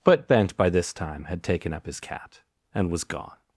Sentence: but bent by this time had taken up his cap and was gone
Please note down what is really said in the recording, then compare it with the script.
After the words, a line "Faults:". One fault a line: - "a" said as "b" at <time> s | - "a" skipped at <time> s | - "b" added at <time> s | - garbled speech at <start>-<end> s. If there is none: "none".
but bent by this time had taken up his cat and was gone
Faults:
- "cap" said as "cat" at 2.0 s